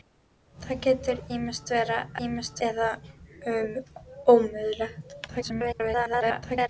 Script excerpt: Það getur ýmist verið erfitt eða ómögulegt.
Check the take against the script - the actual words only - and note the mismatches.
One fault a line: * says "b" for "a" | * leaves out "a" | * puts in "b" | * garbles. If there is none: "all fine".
* says "ýmist" for "erfitt"
* garbles